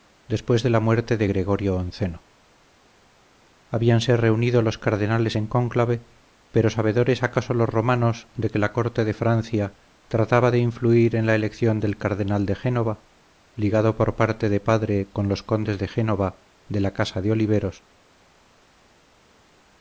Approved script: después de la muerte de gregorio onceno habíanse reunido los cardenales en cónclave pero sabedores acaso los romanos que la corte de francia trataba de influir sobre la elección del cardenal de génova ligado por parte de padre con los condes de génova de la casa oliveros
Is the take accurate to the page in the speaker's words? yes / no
no